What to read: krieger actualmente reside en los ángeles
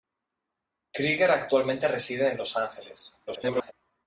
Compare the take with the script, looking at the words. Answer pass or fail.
fail